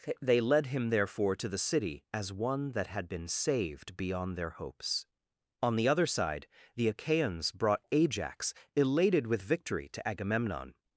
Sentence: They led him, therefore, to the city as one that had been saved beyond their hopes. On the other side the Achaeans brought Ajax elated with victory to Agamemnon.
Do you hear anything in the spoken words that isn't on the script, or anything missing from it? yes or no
no